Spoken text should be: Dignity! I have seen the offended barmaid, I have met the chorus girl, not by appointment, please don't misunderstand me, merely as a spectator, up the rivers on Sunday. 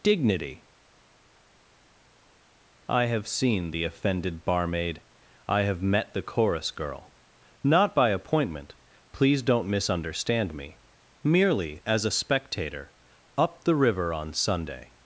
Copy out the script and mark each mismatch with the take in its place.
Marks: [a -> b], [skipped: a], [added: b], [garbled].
Dignity! I have seen the offended barmaid, I have met the chorus girl, not by appointment, please don't misunderstand me, merely as a spectator, up the [rivers -> river] on Sunday.